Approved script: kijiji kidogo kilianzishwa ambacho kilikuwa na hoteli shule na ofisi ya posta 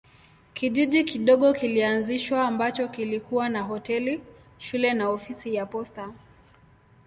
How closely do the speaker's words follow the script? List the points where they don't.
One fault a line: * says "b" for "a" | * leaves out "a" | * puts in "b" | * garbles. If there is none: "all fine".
all fine